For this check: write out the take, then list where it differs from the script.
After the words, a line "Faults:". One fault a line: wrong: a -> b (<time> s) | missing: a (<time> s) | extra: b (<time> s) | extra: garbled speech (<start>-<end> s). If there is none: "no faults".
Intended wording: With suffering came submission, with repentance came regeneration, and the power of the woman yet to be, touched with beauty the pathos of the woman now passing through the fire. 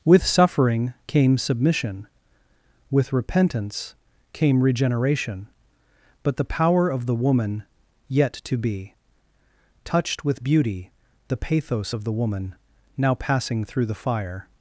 With suffering came submission, with repentance came regeneration, but the power of the woman yet to be, touched with beauty the pathos of the woman now passing through the fire.
Faults:
wrong: and -> but (6.2 s)